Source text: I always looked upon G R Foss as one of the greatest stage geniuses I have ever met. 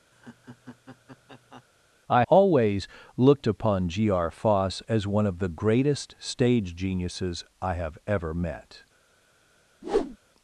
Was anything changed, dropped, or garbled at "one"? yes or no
no